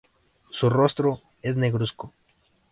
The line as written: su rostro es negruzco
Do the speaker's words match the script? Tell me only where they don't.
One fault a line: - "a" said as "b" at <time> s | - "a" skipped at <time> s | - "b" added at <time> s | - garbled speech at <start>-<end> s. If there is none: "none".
none